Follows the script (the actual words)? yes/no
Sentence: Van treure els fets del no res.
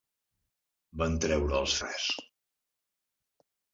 no